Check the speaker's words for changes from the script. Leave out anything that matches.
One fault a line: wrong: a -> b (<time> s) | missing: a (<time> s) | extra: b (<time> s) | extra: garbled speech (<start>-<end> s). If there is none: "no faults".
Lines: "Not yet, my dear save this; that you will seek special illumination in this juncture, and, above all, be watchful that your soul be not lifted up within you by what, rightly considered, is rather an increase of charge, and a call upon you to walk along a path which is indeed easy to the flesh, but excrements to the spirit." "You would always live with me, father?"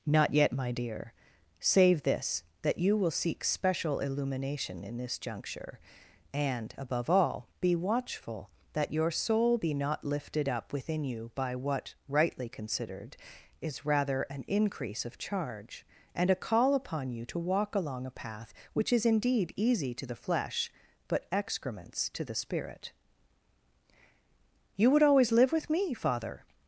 no faults